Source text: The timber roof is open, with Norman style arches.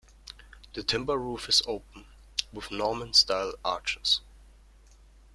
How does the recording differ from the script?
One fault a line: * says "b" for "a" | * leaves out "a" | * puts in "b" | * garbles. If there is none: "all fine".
all fine